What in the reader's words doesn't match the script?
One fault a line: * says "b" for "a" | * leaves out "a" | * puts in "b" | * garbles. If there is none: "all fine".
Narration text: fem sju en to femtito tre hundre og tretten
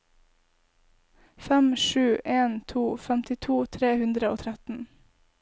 all fine